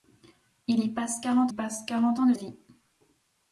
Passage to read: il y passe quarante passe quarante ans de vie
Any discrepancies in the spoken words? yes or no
no